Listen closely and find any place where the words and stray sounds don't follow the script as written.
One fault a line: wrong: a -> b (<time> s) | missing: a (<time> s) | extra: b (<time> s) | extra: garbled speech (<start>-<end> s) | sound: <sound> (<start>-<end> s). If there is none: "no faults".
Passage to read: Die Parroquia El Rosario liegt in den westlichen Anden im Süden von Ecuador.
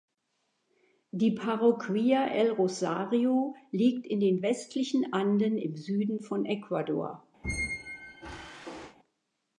sound: squeak (7.4-9.0 s)